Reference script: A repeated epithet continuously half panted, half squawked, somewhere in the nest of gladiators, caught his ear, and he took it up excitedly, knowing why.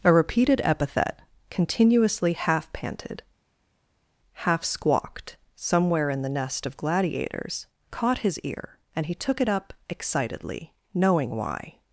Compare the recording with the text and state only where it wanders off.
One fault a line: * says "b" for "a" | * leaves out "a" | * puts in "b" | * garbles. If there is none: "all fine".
all fine